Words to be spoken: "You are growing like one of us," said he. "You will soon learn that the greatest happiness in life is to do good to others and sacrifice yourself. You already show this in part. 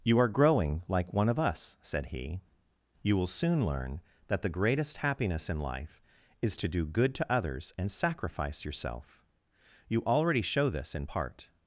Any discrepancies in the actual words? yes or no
no